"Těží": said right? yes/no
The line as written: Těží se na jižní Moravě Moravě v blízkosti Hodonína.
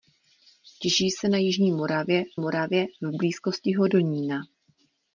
yes